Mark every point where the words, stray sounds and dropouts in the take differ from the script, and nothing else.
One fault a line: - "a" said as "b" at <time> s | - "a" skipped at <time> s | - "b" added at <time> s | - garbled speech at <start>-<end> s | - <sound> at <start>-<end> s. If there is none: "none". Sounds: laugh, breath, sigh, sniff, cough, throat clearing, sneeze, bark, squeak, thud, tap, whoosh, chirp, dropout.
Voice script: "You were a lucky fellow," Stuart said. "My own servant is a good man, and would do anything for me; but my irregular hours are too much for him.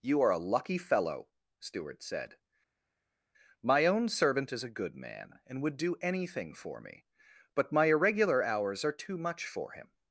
- "were" said as "are" at 0.2 s